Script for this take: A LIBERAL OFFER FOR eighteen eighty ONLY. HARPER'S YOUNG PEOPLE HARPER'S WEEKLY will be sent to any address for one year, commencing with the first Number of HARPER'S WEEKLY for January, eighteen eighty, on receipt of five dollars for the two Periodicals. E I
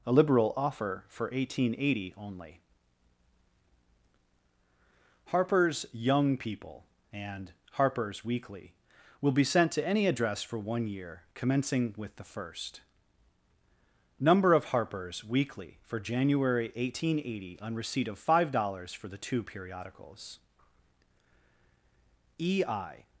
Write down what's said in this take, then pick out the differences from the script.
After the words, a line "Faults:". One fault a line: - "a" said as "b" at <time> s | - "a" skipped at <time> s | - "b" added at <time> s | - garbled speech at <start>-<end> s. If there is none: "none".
A LIBERAL OFFER FOR eighteen eighty ONLY. HARPER'S YOUNG PEOPLE and HARPER'S WEEKLY will be sent to any address for one year, commencing with the first Number of HARPER'S WEEKLY for January, eighteen eighty, on receipt of five dollars for the two Periodicals. E I
Faults:
- "and" added at 7.1 s